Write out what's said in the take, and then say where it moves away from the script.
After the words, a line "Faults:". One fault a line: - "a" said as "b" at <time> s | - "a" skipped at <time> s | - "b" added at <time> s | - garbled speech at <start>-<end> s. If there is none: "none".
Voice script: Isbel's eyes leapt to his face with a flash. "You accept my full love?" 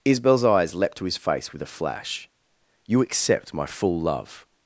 Isbel's eyes leapt to his face with a flash. "You accept my full love?"
Faults:
none